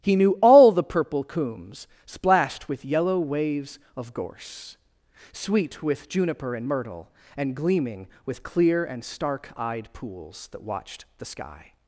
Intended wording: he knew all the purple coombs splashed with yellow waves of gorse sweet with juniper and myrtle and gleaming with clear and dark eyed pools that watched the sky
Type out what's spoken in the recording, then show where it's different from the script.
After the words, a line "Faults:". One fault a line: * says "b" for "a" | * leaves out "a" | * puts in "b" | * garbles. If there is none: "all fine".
he knew all the purple coombs splashed with yellow waves of gorse sweet with juniper and myrtle and gleaming with clear and stark eyed pools that watched the sky
Faults:
* says "stark" for "dark"